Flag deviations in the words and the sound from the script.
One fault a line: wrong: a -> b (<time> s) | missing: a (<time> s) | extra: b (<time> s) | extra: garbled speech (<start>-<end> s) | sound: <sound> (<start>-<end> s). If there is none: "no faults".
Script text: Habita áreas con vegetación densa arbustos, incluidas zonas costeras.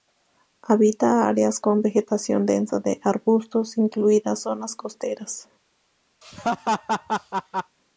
extra: de (2.8 s)
sound: laugh (6.2-7.8 s)